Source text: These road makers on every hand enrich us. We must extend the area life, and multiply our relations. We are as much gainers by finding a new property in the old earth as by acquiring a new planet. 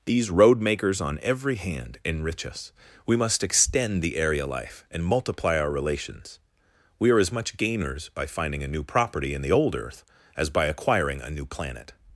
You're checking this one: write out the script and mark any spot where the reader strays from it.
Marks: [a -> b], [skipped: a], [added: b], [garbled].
These road makers on every hand enrich us. We must extend the area life, and multiply our relations. We are as much gainers by finding a new property in the old earth as by acquiring a new planet.